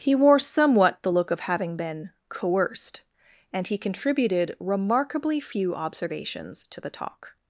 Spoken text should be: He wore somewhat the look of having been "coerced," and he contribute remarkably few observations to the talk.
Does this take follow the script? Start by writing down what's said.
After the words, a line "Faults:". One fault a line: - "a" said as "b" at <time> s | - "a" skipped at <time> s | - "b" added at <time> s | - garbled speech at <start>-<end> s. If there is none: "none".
He wore somewhat the look of having been "coerced," and he contributed remarkably few observations to the talk.
Faults:
- "contribute" said as "contributed" at 3.8 s